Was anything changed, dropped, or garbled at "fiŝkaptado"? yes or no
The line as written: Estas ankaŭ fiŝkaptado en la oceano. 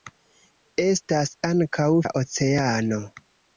yes